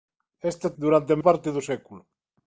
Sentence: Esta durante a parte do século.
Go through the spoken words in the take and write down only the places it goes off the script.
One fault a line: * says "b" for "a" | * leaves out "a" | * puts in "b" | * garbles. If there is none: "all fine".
all fine